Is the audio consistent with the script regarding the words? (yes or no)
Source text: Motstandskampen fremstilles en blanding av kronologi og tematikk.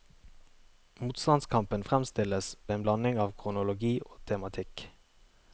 yes